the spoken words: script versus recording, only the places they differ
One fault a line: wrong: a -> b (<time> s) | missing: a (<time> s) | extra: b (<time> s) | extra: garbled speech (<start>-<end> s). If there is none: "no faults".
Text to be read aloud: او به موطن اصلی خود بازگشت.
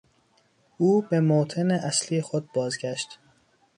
no faults